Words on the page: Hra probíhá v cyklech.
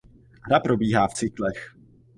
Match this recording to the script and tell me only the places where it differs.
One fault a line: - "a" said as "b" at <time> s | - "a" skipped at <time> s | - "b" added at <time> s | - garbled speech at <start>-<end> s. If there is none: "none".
none